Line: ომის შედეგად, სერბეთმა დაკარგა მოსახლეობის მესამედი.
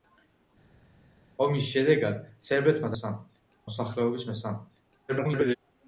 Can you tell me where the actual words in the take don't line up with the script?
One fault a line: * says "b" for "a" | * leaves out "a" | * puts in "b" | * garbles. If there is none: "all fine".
* says "მესამედი" for "დაკარგა"
* garbles